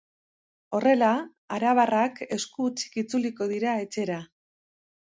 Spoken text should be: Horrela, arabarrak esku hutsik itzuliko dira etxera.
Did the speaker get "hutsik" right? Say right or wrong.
right